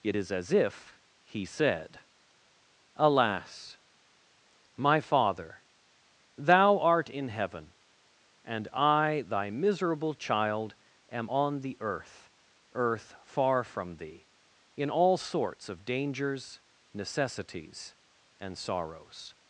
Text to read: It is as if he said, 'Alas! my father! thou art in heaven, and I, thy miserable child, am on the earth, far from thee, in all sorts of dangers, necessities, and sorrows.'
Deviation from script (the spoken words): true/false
true